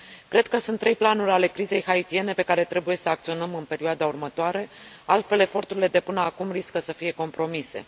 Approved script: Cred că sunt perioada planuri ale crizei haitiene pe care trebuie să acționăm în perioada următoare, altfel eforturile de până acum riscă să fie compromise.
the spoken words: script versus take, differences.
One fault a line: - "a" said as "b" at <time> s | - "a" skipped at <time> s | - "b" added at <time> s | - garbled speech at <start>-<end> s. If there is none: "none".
- "perioada" said as "trei" at 0.8 s